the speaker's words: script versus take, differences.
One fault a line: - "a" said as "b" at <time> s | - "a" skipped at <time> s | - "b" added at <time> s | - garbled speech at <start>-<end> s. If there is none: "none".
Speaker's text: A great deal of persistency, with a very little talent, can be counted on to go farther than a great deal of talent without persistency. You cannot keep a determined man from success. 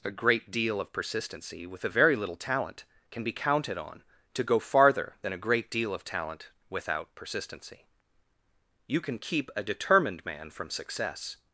- "cannot" said as "can" at 9.0 s